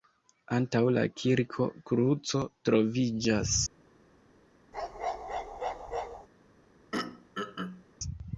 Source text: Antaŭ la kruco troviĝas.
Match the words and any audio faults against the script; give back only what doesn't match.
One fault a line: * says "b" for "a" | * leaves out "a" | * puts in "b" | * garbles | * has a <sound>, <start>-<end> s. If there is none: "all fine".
* puts in "kirko"
* has a bark, 4.7-6.3 s
* has a throat clearing, 6.9-7.8 s